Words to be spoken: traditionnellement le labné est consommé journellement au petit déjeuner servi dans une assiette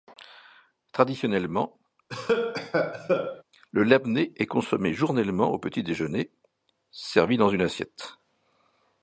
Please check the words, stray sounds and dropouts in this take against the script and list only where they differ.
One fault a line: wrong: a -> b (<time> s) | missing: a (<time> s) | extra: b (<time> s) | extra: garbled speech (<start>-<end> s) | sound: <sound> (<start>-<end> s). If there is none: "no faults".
sound: cough (2.1-3.4 s)